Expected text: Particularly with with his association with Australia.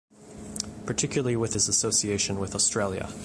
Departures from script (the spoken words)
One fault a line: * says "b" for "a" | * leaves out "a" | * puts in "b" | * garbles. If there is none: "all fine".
* leaves out "with"